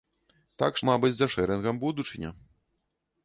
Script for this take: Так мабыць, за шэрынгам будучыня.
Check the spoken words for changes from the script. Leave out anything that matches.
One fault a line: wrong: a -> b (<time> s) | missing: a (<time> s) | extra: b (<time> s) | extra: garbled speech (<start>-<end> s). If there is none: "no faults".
no faults